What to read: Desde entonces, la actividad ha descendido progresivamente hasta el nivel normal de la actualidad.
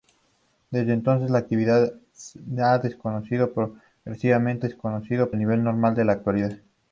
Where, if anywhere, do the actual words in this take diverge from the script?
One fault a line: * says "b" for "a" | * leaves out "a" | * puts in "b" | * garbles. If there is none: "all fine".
* says "descendido" for "hasta"